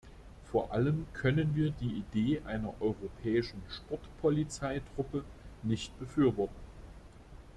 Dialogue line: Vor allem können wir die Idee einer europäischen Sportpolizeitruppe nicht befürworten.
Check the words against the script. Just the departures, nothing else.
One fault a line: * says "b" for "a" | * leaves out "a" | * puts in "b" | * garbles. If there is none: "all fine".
all fine